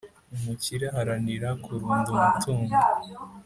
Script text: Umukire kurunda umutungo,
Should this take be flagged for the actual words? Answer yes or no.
yes